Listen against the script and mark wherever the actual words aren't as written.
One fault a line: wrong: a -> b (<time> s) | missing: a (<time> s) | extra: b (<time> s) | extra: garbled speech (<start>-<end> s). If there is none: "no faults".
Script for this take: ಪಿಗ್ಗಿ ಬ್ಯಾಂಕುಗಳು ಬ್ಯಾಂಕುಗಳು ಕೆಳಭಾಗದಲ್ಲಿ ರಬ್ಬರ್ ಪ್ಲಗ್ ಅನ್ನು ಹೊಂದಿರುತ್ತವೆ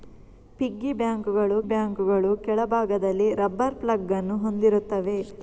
no faults